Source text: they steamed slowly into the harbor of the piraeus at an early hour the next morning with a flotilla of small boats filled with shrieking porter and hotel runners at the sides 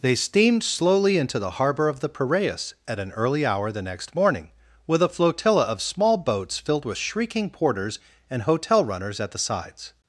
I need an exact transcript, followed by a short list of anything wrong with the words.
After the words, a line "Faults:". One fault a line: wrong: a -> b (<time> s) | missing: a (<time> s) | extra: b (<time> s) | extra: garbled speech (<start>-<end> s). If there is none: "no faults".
they steamed slowly into the harbor of the piraeus at an early hour the next morning with a flotilla of small boats filled with shrieking porters and hotel runners at the sides
Faults:
wrong: porter -> porters (7.5 s)